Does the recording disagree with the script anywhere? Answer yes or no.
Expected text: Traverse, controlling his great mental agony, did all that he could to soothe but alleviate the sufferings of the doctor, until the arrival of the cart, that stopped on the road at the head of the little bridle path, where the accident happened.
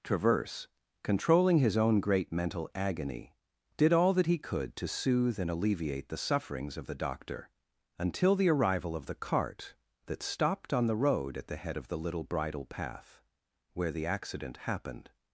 yes